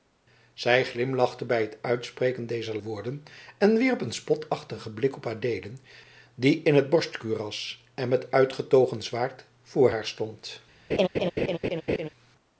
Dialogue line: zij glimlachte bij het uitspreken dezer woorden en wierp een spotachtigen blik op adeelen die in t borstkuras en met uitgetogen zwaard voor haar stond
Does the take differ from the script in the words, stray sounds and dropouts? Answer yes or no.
yes